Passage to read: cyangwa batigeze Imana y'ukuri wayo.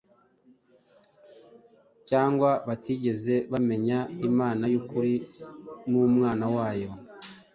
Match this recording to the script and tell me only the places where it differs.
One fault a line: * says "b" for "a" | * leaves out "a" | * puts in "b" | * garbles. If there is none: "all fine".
* puts in "bamenya"
* puts in "n'Umwana"